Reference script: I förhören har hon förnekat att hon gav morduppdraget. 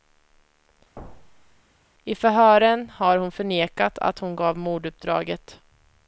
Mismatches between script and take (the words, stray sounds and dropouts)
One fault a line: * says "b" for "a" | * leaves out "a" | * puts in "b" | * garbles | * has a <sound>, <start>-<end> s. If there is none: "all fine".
* has a thud, 1.0-1.6 s